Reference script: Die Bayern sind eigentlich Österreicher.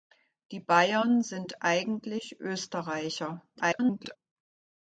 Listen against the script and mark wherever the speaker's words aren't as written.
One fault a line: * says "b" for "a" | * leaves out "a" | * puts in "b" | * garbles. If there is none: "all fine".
* garbles